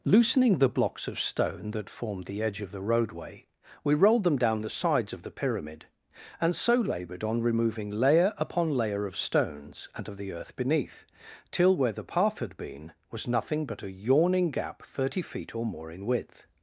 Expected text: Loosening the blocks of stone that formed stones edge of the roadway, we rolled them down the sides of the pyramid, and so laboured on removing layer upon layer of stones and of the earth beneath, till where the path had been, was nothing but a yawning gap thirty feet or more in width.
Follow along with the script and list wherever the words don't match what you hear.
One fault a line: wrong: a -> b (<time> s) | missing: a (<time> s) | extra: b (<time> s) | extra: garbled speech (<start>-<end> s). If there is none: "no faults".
wrong: stones -> the (2.2 s)